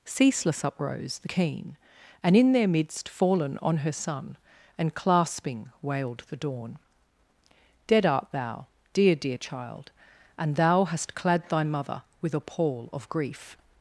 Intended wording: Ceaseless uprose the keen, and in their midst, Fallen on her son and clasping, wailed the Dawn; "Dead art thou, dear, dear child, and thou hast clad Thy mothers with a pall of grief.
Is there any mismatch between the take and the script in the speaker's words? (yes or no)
yes